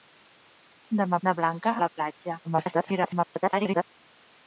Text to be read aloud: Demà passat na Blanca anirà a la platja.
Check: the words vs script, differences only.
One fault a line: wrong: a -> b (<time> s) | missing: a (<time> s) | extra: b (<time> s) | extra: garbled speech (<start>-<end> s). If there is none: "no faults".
missing: passat (1.2 s)
missing: anirà (1.7 s)
extra: garbled speech (2.4-3.8 s)